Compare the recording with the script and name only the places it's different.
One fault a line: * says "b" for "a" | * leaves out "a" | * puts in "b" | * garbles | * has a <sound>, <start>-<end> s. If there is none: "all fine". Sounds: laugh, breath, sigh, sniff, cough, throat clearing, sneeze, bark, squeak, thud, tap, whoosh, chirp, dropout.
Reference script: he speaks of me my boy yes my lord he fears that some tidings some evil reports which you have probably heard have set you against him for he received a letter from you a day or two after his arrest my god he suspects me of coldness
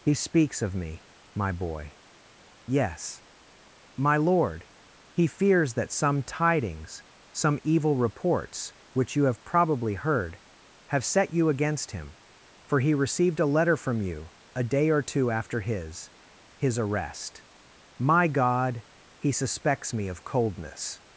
* puts in "his"